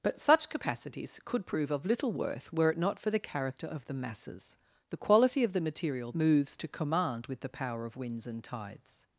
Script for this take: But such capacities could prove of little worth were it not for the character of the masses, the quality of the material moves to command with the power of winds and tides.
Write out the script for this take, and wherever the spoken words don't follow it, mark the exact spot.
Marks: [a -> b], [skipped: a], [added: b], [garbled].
But such capacities could prove of little worth were it not for the character of the masses, the quality of the material moves to command with the power of winds and tides.